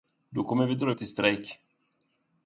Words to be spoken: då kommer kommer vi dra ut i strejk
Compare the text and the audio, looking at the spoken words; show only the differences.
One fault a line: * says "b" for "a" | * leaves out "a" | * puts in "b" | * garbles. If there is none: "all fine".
* leaves out "kommer"